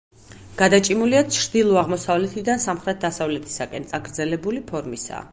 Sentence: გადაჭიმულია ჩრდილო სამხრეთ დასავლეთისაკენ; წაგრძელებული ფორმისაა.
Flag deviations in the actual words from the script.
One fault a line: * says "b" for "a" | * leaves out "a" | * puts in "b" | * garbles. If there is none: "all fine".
* puts in "აღმოსავლეთიდან"